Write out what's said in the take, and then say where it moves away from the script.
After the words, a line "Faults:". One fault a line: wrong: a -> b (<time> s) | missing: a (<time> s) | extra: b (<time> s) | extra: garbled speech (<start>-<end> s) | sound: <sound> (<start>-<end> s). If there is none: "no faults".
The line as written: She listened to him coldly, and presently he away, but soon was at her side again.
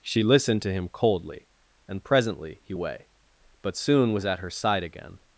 She listened to him coldly, and presently he away, but soon was at her side again.
Faults:
no faults